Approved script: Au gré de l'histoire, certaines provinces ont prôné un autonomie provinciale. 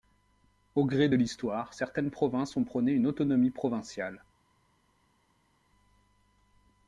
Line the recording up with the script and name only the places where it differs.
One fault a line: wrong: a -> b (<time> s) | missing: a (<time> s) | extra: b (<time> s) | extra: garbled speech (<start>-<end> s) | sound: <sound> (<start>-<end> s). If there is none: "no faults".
wrong: un -> une (2.9 s)